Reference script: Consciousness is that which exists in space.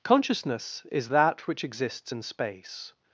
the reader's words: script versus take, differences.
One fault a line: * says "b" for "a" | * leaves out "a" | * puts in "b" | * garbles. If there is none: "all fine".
all fine